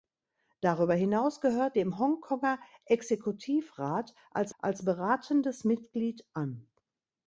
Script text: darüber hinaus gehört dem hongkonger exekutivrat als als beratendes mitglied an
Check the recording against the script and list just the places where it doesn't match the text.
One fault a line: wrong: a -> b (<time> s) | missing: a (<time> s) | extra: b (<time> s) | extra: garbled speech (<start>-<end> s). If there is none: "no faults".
no faults